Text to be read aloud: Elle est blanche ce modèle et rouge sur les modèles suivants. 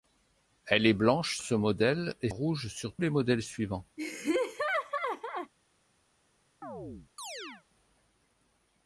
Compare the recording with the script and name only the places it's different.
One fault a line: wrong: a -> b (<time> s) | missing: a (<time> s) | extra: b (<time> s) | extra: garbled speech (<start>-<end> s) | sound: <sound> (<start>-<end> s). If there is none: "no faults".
sound: laugh (4.0-5.5 s)
sound: chirp (6.6-7.6 s)